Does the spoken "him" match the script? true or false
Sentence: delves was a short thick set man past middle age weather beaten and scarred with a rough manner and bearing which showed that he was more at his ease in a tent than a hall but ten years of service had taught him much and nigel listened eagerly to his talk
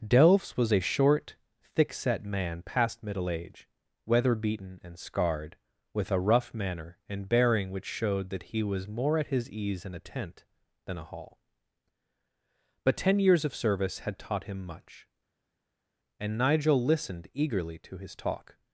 true